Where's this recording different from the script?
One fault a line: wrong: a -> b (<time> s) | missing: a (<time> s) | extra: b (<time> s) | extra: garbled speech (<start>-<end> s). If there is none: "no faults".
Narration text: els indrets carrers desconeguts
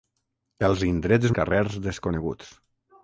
no faults